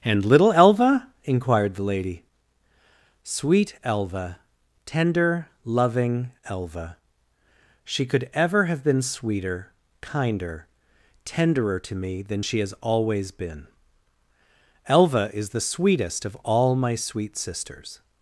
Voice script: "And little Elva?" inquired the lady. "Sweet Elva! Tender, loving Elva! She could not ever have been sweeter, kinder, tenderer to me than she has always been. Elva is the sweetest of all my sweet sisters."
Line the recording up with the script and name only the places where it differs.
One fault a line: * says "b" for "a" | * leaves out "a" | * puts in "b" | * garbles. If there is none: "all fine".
* leaves out "not"